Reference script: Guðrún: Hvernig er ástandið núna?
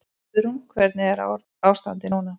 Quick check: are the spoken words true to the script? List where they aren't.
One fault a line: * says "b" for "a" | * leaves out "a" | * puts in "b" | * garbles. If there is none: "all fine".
all fine